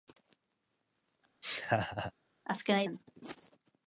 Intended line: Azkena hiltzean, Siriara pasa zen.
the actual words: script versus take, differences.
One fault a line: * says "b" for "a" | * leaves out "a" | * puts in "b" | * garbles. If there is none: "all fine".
* leaves out "hiltzean Siriara pasa"